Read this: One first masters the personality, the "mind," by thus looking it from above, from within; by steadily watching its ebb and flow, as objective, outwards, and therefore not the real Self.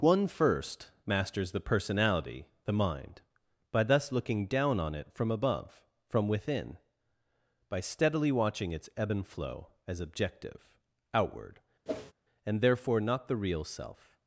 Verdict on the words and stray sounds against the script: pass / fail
fail